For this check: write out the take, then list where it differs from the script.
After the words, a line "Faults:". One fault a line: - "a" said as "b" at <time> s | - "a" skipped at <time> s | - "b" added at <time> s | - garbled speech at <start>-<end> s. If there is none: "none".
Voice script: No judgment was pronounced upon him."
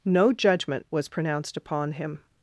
No judgment was pronounced upon him."
Faults:
none